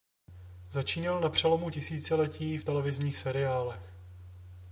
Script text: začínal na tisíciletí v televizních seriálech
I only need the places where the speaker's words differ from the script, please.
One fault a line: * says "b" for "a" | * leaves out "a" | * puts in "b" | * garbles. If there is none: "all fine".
* puts in "přelomu"